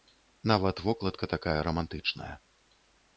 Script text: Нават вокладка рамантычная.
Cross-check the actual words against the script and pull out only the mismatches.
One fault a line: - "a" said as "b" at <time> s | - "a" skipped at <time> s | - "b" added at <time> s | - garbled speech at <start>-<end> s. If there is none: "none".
- "такая" added at 1.3 s